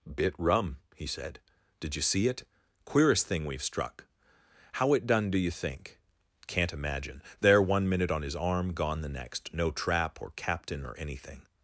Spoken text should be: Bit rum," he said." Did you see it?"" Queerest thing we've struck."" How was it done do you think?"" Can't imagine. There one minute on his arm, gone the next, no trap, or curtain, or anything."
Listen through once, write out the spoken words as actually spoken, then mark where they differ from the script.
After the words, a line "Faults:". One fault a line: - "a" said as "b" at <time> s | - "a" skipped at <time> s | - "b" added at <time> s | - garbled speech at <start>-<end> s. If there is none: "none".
Bit rum," he said." Did you see it?"" Queerest thing we've struck."" How it done do you think?"" Can't imagine. There one minute on his arm, gone the next, no trap, or captain, or anything."
Faults:
- "was" skipped at 4.9 s
- "curtain" said as "captain" at 10.3 s